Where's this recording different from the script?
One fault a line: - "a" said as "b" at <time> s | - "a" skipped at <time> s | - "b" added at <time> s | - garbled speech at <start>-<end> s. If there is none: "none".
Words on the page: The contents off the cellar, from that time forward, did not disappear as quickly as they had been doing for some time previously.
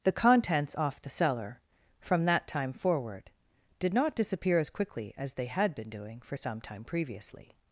none